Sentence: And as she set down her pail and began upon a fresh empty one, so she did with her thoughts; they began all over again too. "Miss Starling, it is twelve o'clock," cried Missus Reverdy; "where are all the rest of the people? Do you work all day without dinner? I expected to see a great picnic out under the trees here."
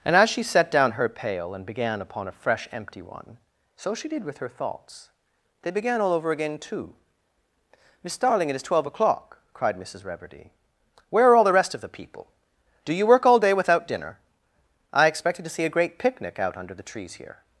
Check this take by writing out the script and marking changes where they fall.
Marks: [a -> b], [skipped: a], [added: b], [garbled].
And as she set down her pail and began upon a fresh empty one, so she did with her thoughts; they began all over again too. "Miss Starling, it is twelve o'clock," cried Missus Reverdy; "where are all the rest of the people? Do you work all day without dinner? I expected to see a great picnic out under the trees here."